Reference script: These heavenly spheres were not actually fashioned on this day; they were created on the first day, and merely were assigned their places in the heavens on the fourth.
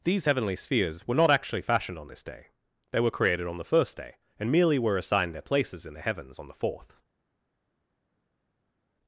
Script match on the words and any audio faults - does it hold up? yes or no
yes